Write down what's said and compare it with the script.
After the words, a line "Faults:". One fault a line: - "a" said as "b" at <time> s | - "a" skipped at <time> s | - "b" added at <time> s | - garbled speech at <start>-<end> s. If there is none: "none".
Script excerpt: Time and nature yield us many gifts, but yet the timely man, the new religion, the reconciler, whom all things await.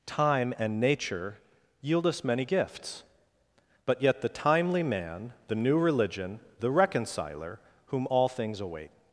Time and nature yield us many gifts, but yet the timely man, the new religion, the reconciler, whom all things await.
Faults:
none